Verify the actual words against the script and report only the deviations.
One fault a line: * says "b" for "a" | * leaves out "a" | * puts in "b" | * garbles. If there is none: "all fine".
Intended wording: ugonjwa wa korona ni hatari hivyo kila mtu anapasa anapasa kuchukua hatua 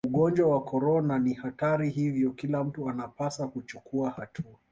* leaves out "anapasa"